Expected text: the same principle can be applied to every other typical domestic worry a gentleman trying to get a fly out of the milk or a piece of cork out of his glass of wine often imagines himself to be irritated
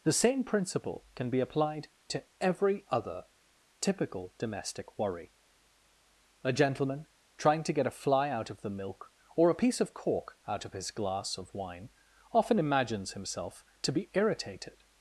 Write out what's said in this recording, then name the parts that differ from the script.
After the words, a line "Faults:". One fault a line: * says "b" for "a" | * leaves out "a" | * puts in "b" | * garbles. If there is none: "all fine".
the same principle can be applied to every other typical domestic worry a gentleman trying to get a fly out of the milk or a piece of cork out of his glass of wine often imagines himself to be irritated
Faults:
all fine